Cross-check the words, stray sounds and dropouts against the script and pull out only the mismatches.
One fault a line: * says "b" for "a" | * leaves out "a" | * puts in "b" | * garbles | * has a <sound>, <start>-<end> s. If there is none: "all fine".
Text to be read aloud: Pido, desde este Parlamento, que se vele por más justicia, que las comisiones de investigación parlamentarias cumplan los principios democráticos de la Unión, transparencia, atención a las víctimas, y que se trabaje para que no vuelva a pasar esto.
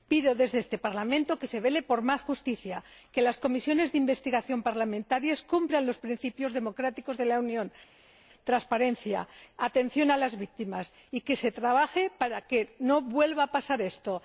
all fine